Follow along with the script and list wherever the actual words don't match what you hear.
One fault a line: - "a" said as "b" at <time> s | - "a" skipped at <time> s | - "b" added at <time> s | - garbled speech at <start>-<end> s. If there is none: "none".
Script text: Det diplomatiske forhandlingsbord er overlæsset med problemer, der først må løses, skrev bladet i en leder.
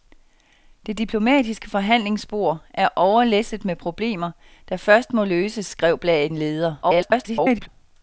- "i" skipped at 6.3 s
- garbled speech at 6.8-7.7 s